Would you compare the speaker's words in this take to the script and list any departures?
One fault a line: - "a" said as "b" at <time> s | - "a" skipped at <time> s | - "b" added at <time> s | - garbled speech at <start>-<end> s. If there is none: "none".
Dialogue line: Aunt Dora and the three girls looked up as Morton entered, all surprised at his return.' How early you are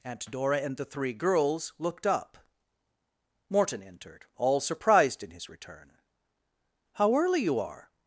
- "as" skipped at 2.4 s
- "at" said as "in" at 5.2 s